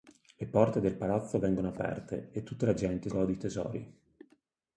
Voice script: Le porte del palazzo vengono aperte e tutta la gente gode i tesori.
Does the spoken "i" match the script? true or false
true